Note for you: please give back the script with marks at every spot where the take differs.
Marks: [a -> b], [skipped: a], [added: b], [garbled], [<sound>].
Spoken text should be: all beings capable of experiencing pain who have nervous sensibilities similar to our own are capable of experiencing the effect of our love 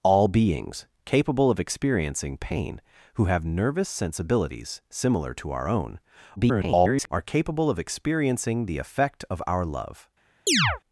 all beings capable of experiencing pain who have nervous sensibilities similar to our own [garbled] are capable of experiencing the effect of our love [chirp]